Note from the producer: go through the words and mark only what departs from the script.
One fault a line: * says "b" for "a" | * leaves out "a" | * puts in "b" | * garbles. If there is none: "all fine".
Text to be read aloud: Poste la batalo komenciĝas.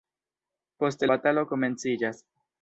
* leaves out "la"